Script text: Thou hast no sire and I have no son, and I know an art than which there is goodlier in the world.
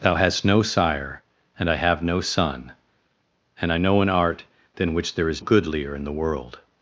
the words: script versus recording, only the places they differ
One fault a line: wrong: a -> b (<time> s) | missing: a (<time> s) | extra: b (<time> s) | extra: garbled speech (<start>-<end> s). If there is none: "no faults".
no faults